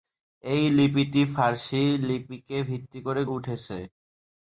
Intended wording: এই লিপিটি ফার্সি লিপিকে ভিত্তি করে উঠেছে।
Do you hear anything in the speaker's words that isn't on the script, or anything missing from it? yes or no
no